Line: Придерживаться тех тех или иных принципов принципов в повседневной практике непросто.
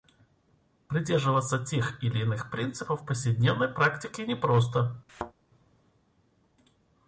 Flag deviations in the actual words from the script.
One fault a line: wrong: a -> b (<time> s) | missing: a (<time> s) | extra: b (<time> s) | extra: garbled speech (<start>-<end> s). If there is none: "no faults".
missing: тех (2.0 s)
missing: принципов (3.0 s)